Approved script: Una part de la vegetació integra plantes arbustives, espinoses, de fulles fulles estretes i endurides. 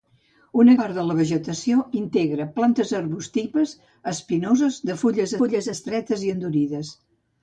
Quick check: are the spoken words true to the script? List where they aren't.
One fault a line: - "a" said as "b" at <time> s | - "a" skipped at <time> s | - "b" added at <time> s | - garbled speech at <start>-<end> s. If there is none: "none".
none